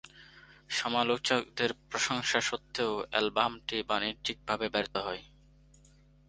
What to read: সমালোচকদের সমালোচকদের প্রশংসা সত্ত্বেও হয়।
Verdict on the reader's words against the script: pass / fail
fail